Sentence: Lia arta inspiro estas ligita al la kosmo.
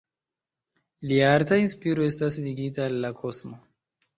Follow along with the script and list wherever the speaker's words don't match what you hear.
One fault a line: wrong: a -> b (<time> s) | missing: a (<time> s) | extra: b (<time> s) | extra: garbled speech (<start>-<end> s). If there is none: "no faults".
no faults